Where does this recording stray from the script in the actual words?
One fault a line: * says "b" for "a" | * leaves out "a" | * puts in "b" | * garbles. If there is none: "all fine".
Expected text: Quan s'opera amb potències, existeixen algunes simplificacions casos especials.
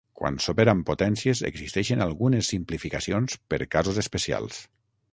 * puts in "per"